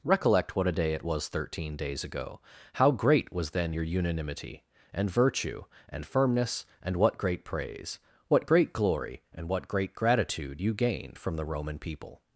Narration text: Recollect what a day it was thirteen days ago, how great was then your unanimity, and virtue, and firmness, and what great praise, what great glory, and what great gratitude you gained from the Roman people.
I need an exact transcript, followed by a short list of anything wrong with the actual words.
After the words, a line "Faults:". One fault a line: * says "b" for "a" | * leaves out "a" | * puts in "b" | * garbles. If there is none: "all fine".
Recollect what a day it was thirteen days ago, how great was then your unanimity, and virtue, and firmness, and what great praise, what great glory, and what great gratitude you gained from the Roman people.
Faults:
all fine